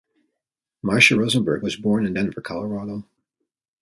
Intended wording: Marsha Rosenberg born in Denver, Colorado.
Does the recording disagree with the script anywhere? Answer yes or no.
yes